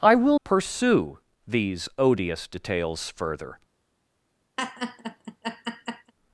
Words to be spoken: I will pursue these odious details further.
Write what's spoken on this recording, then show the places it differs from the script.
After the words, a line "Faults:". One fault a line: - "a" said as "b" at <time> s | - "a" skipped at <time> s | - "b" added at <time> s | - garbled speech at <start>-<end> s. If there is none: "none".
I will pursue these odious details further.
Faults:
none